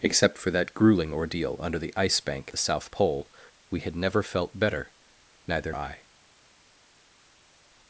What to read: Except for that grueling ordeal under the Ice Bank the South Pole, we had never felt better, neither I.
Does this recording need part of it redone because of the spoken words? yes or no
no